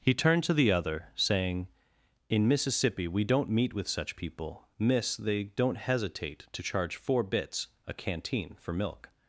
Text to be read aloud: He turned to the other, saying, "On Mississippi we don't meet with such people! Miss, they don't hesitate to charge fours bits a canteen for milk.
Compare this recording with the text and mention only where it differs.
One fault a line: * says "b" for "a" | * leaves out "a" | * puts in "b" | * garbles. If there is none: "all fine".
* says "In" for "On"
* says "four" for "fours"